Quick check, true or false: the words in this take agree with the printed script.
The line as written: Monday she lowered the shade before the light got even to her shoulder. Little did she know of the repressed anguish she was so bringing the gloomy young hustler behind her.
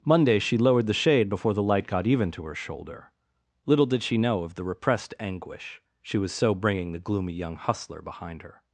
true